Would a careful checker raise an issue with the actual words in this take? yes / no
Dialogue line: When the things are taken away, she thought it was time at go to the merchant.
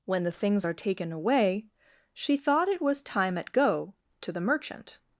no